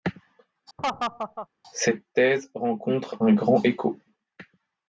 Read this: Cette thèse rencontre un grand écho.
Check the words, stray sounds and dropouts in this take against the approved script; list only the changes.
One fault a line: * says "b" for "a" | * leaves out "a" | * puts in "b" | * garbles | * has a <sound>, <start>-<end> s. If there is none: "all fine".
* has a laugh, 0.8-1.5 s